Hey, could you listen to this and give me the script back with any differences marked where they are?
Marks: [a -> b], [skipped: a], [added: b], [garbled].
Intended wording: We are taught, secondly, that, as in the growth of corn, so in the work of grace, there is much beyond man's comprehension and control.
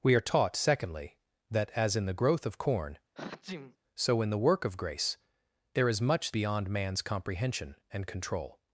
We are taught, secondly, that, as in the growth of corn, so in the work of grace, there is much beyond man's comprehension and control.